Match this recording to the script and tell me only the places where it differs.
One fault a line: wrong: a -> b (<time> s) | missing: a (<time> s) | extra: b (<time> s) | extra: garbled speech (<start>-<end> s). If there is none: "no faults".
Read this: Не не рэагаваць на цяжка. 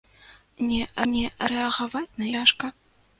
no faults